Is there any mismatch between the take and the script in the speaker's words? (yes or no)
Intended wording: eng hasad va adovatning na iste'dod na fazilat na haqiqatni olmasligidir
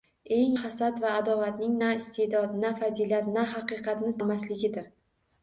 no